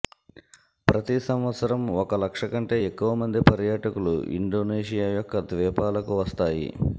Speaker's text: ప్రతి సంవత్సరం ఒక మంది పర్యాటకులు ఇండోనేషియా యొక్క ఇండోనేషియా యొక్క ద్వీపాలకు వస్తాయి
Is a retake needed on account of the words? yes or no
yes